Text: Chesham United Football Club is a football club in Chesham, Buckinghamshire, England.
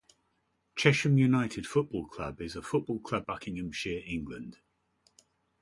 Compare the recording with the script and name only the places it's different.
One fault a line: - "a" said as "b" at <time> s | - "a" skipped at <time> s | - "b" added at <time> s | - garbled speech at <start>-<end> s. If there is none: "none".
- "in Chesham" skipped at 3.3 s